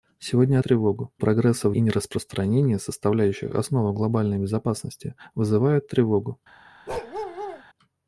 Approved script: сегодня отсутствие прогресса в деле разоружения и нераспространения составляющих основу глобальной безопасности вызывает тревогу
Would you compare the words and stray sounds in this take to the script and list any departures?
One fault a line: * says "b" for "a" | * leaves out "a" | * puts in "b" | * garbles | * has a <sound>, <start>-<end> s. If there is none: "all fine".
* says "тревогу" for "отсутствие"
* leaves out "деле разоружения"
* has a bark, 6.9-7.6 s